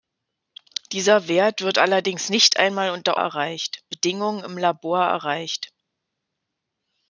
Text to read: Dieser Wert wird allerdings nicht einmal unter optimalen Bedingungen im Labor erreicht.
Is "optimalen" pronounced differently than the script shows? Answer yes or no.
yes